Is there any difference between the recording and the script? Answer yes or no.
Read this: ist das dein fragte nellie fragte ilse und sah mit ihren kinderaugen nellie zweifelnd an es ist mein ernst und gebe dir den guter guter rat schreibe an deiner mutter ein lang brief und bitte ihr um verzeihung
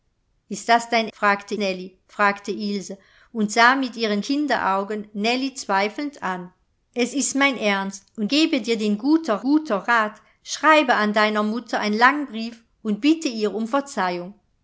no